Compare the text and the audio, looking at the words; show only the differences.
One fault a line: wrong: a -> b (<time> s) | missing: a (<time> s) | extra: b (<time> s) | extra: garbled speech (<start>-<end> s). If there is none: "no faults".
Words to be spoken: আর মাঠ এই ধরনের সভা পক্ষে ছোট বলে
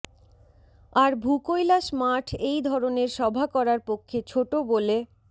extra: ভূকৈলাস (1.2 s)
extra: করার (3.5 s)